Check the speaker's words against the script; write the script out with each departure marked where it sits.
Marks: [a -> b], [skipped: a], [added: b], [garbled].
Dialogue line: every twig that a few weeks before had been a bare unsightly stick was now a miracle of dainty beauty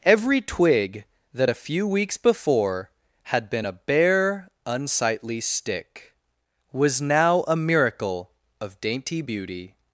every twig that a few weeks before had been a bare unsightly stick was now a miracle of dainty beauty